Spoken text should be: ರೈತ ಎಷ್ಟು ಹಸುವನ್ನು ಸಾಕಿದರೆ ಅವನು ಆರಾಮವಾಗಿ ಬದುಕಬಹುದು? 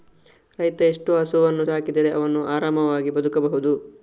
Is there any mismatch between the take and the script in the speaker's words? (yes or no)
no